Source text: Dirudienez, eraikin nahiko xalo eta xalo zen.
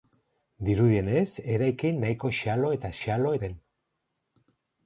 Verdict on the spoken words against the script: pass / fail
pass